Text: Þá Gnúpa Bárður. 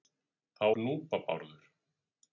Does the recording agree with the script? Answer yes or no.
yes